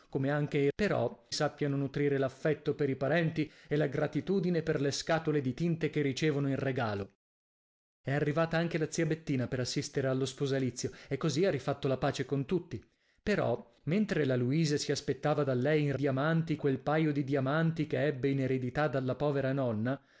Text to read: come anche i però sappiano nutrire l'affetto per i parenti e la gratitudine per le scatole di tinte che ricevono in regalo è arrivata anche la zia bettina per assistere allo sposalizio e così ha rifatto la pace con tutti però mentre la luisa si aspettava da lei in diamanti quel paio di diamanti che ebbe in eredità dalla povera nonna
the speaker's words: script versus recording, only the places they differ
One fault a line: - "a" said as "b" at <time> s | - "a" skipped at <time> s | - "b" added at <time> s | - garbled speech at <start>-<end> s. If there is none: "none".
none